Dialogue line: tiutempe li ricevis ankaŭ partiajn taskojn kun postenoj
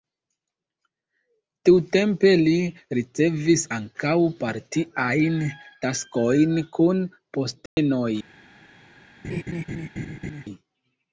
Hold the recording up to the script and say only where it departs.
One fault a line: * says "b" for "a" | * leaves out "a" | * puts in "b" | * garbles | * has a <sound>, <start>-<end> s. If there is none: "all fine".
* has a dropout, 7.7-7.8 s
* has a laugh, 9.2-10.4 s